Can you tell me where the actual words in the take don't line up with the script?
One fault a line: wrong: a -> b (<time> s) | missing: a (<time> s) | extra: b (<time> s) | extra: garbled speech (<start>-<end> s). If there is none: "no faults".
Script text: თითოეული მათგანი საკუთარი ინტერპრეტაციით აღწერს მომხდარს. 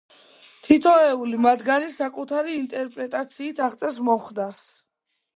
no faults